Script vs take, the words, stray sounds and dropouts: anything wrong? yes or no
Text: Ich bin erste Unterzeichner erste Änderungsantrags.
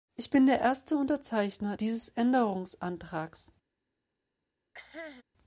yes